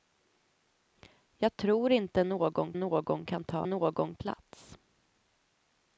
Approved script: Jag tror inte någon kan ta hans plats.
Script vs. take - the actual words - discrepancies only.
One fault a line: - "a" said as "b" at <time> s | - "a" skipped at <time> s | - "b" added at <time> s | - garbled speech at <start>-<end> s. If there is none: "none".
- "någon" added at 2.7 s
- "hans" said as "någon" at 3.6 s